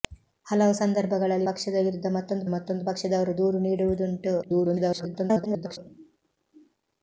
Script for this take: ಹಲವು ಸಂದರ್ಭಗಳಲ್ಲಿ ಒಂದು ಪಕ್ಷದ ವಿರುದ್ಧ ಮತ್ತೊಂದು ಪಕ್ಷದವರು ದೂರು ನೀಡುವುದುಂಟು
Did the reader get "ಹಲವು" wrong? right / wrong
right